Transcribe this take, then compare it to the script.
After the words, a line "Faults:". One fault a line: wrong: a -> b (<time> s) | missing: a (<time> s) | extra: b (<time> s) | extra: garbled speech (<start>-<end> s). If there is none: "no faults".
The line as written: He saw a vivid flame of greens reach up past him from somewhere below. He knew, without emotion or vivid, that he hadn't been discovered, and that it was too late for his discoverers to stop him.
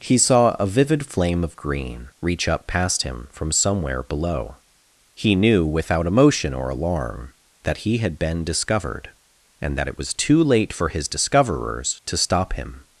He saw a vivid flame of green reach up past him from somewhere below. He knew, without emotion or alarm, that he had been discovered, and that it was too late for his discoverers to stop him.
Faults:
wrong: greens -> green (1.6 s)
wrong: vivid -> alarm (6.7 s)
wrong: hadn't -> had (8.0 s)